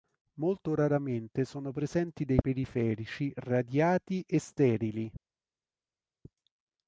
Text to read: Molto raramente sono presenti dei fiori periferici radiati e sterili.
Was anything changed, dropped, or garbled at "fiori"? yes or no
yes